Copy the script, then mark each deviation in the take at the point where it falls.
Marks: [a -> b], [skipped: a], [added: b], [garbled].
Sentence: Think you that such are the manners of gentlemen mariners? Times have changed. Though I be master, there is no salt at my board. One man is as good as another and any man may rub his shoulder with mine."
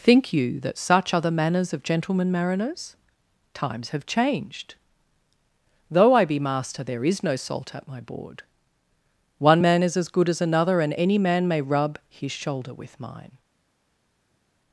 Think you that such are the manners of gentlemen mariners? Times have changed. Though I be master, there is no salt at my board. One man is as good as another and any man may rub his shoulder with mine."